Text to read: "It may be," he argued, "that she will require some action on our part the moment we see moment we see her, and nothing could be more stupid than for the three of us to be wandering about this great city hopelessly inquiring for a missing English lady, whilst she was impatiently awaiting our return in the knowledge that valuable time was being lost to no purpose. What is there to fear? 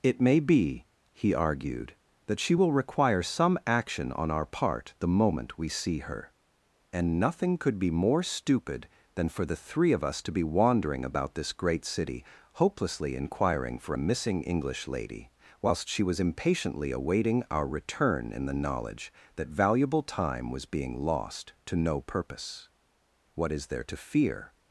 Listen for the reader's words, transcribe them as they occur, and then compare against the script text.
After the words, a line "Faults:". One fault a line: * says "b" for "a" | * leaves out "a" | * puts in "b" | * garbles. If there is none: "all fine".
"It may be," he argued, "that she will require some action on our part the moment we see her, and nothing could be more stupid than for the three of us to be wandering about this great city hopelessly inquiring for a missing English lady, whilst she was impatiently awaiting our return in the knowledge that valuable time was being lost to no purpose. What is there to fear?
Faults:
* leaves out "moment we see"